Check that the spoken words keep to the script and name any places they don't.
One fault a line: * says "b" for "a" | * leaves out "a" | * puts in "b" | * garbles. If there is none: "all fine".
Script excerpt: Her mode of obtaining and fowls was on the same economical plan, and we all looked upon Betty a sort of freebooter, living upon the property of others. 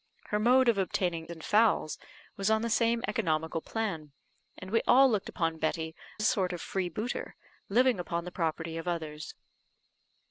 all fine